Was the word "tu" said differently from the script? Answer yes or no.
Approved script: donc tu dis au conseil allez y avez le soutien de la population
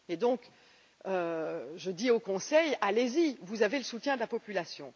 yes